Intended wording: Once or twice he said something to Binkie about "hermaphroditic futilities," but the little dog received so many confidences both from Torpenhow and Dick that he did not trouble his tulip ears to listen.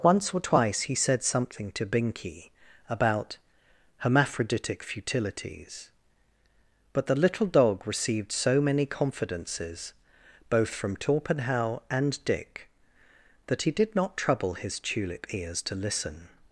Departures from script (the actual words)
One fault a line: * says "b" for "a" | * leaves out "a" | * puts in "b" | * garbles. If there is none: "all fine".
all fine